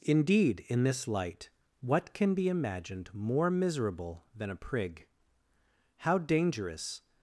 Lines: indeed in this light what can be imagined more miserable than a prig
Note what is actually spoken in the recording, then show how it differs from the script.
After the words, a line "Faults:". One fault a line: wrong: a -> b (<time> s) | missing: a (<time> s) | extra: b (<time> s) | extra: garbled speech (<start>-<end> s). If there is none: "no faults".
indeed in this light what can be imagined more miserable than a prig how dangerous
Faults:
extra: how dangerous (6.0 s)